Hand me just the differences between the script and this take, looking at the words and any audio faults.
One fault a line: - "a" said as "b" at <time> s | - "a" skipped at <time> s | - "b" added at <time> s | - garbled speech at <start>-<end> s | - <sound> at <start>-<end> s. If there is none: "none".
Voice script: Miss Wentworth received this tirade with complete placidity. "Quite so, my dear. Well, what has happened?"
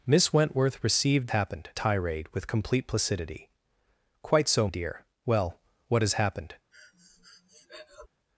- "this" said as "happened" at 1.3 s
- "my" skipped at 4.7 s
- breath at 6.7-8.1 s